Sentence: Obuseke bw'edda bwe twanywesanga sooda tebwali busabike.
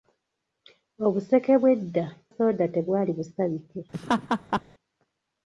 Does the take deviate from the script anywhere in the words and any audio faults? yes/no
yes